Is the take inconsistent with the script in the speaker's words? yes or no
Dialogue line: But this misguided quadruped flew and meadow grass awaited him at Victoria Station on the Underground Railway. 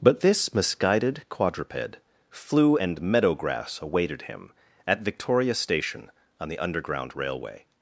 no